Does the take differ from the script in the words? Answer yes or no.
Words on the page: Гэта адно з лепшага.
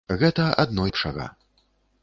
yes